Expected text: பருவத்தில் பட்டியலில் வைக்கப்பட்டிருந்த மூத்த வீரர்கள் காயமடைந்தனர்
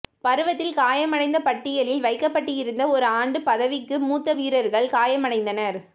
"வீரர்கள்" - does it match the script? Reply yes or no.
yes